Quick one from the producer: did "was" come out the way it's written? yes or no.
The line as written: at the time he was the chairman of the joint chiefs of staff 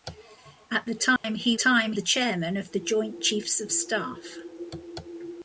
no